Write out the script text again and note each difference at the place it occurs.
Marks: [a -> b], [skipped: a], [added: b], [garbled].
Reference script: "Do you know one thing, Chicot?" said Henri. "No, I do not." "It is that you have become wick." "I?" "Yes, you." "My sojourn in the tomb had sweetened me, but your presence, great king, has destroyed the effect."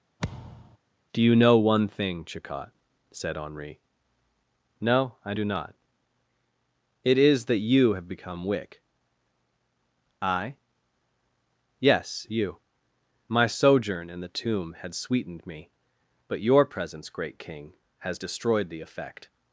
"Do you know one thing, Chicot?" said Henri. "No, I do not." "It is that you have become wick." "I?" "Yes, you." "My sojourn in the tomb had sweetened me, but your presence, great king, has destroyed the effect."